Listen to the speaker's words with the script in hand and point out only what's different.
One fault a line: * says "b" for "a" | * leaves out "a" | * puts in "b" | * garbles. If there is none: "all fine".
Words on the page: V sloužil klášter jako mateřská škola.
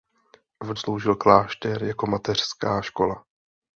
all fine